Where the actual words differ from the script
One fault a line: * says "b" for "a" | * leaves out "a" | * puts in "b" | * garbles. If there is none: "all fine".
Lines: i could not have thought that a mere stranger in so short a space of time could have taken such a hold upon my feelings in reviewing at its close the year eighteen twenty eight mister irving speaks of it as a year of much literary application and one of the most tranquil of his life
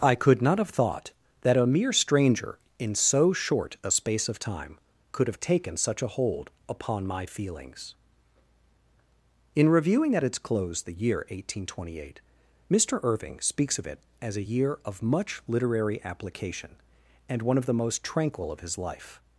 all fine